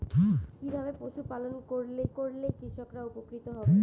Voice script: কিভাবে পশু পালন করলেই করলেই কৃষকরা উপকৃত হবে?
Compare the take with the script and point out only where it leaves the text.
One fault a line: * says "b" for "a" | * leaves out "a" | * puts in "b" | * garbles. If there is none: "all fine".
all fine